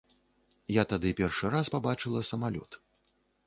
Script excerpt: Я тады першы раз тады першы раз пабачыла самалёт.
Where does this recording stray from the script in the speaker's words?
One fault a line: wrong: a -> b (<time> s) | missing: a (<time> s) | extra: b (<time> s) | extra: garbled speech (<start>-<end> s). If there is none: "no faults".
missing: тады першы раз (1.7 s)